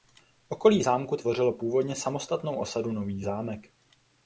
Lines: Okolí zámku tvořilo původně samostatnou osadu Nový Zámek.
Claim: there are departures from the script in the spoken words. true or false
false